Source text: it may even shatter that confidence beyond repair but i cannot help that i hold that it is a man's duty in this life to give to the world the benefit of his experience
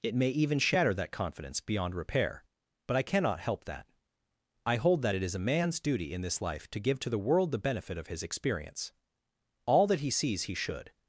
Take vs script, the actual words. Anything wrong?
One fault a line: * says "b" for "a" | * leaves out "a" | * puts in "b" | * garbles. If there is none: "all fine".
* puts in "all that he sees he should"